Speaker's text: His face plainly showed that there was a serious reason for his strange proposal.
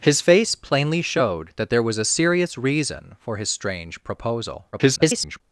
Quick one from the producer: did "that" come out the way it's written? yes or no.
yes